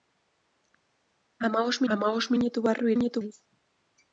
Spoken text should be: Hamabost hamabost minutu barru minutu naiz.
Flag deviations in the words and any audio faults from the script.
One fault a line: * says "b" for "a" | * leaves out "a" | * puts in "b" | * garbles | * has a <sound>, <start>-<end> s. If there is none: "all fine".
all fine